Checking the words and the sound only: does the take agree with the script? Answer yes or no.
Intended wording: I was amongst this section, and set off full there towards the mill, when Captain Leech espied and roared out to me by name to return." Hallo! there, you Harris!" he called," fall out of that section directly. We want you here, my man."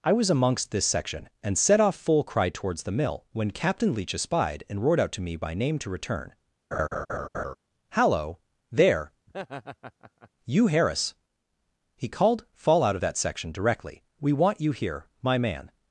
no